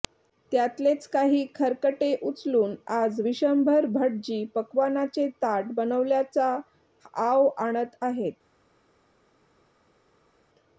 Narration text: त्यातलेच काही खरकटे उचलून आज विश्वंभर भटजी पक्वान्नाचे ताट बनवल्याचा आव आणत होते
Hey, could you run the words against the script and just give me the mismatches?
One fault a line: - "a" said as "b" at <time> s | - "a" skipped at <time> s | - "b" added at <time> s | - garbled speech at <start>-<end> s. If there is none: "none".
- "होते" said as "आहेत" at 8.0 s